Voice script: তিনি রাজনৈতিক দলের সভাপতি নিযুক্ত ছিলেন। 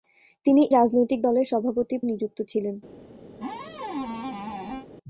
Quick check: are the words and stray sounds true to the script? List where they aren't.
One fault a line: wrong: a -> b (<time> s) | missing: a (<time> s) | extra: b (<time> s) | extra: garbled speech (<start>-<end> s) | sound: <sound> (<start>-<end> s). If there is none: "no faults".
sound: squeak (3.3-4.9 s)